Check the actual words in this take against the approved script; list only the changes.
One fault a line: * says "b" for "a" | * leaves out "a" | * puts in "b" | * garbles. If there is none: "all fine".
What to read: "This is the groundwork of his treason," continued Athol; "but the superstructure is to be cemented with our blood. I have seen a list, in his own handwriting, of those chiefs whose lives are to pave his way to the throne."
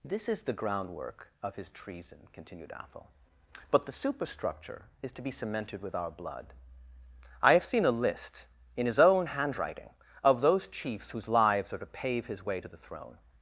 all fine